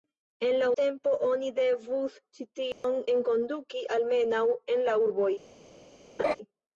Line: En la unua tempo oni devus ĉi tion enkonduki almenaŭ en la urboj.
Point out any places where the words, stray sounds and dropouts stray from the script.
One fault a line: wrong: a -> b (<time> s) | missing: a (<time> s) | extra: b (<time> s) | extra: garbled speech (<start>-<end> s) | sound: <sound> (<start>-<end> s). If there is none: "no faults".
missing: unua (0.7 s)
sound: dropout (2.7-2.8 s)
sound: laugh (6.2-6.4 s)